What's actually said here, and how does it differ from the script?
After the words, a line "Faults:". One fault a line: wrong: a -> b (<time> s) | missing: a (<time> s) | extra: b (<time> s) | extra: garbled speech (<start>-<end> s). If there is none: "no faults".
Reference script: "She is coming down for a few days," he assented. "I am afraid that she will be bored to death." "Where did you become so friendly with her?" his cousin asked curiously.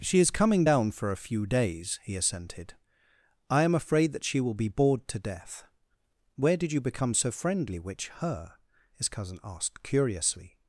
"She is coming down for a few days," he assented. "I am afraid that she will be bored to death." "Where did you become so friendly which her?" his cousin asked curiously.
Faults:
wrong: with -> which (7.8 s)